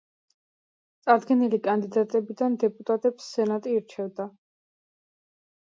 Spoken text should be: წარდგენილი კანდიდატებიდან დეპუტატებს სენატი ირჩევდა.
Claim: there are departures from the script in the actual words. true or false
false